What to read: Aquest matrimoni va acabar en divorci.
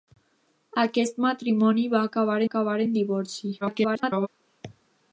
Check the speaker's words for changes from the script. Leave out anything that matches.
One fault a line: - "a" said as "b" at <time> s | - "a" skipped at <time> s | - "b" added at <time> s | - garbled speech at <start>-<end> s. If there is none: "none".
- "acabar" added at 2.5 s
- garbled speech at 3.6-4.3 s